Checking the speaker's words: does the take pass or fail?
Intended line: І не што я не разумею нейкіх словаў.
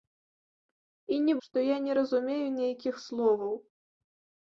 pass